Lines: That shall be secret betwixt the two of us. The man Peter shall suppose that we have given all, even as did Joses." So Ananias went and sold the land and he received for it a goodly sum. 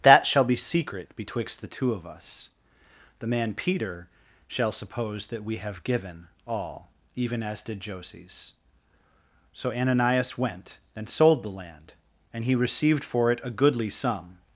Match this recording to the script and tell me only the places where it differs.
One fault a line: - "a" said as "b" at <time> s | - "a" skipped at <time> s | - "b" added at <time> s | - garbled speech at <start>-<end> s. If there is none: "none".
none